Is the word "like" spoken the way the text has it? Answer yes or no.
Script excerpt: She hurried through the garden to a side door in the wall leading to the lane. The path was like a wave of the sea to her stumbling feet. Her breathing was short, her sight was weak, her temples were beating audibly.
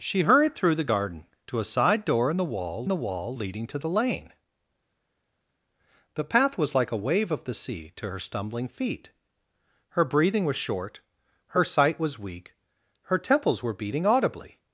yes